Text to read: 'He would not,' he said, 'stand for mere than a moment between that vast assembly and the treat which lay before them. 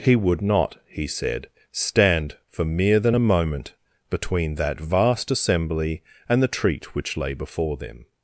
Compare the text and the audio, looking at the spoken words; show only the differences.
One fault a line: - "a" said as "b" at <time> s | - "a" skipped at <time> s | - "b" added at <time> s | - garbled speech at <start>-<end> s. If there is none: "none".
none